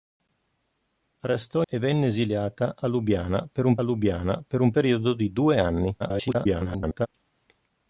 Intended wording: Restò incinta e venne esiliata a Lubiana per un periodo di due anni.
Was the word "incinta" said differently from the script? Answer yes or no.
yes